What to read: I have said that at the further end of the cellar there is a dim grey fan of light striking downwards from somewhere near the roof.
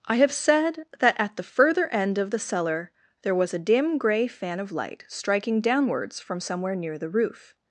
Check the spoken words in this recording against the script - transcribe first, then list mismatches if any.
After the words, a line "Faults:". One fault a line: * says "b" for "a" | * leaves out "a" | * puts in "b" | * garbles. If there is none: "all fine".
I have said that at the further end of the cellar there was a dim grey fan of light striking downwards from somewhere near the roof.
Faults:
* says "was" for "is"